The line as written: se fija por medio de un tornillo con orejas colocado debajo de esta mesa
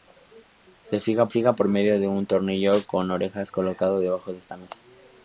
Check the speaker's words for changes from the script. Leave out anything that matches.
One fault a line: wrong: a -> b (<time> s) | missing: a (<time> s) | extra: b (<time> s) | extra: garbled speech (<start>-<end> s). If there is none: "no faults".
extra: fija (1.3 s)